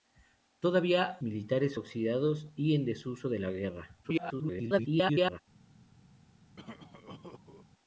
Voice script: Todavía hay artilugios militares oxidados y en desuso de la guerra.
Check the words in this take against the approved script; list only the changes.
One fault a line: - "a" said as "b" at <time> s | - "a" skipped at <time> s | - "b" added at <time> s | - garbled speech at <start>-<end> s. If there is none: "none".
- "hay artilugios" skipped at 1.2 s
- garbled speech at 4.0-5.4 s